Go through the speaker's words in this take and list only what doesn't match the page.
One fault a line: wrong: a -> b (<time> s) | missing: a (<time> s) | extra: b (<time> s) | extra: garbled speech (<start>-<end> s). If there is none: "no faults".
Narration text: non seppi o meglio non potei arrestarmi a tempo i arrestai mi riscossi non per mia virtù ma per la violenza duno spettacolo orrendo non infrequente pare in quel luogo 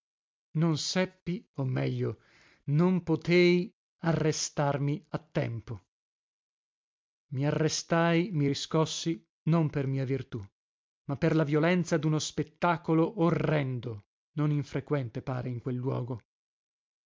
no faults